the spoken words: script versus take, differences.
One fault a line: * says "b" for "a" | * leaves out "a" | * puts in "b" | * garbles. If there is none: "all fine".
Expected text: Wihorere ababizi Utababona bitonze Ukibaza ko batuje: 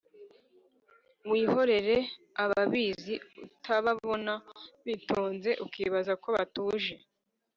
all fine